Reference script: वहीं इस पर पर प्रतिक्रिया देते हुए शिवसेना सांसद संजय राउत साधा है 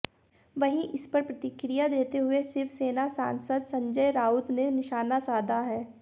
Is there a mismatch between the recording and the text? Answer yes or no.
yes